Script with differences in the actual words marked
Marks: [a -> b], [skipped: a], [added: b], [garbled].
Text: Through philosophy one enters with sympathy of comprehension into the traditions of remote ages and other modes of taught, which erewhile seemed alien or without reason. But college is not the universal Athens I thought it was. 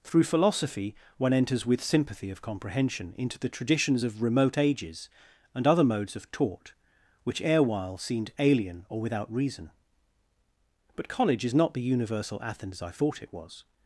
Through philosophy one enters with sympathy of comprehension into the traditions of remote ages and other modes of taught, which erewhile seemed alien or without reason. But college is not the universal Athens I thought it was.